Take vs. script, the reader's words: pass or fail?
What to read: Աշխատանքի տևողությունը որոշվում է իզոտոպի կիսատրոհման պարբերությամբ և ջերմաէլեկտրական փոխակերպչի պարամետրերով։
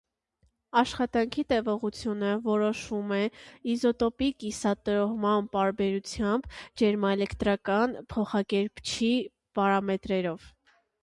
fail